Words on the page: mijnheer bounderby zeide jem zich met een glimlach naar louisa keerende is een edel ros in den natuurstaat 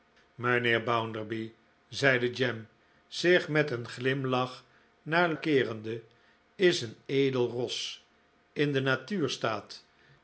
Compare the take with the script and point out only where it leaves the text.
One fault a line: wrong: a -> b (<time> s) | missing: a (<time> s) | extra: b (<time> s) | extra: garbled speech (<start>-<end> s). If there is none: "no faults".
missing: louisa (5.3 s)